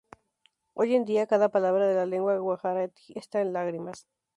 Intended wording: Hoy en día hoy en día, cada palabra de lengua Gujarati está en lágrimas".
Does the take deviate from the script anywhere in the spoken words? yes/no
yes